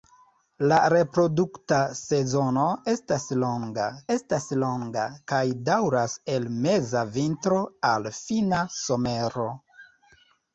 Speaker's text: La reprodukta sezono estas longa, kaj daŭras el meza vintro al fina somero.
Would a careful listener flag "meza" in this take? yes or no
no